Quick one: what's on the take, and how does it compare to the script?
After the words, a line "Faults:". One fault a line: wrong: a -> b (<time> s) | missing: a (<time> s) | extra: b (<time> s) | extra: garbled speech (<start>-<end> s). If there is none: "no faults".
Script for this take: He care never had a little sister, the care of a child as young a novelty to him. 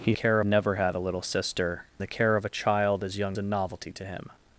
He care never had a little sister, the care of a child as young a novelty to him.
Faults:
no faults